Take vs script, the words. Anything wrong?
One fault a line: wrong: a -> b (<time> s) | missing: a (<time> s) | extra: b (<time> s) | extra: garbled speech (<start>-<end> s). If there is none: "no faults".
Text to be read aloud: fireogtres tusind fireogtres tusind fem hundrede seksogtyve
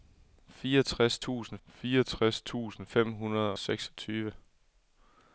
no faults